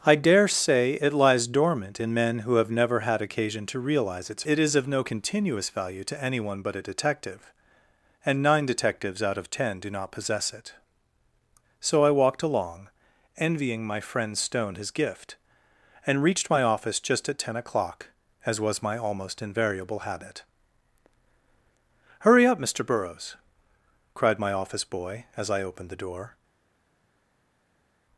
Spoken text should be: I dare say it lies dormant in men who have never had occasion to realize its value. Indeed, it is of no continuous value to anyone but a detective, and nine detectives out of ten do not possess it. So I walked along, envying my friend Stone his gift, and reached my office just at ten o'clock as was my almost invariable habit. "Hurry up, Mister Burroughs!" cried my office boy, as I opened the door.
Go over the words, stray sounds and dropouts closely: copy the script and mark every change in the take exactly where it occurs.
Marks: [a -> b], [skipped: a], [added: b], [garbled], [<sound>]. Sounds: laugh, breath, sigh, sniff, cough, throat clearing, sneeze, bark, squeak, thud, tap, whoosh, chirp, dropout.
I dare say it lies dormant in men who have never had occasion to realize its [skipped: value. Indeed,] it is of no continuous value to anyone but a detective, and nine detectives out of ten do not possess it. So I walked along, envying my friend Stone his gift, and reached my office just at ten o'clock as was my almost invariable habit. "Hurry up, Mister Burroughs!" cried my office boy, as I opened the door.